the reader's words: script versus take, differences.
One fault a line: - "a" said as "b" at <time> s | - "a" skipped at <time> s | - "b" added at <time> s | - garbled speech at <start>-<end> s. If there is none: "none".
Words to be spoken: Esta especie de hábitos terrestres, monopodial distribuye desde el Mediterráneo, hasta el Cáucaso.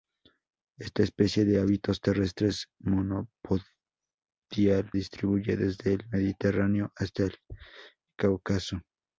none